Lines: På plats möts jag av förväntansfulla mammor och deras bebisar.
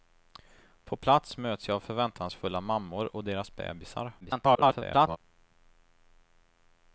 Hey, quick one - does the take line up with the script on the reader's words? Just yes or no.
no